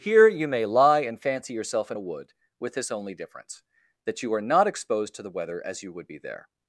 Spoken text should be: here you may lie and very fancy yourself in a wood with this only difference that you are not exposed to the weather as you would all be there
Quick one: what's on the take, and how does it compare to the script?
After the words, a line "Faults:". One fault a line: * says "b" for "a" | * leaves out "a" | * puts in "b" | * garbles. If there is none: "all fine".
here you may lie and fancy yourself in a wood with this only difference that you are not exposed to the weather as you would be there
Faults:
* leaves out "very"
* leaves out "all"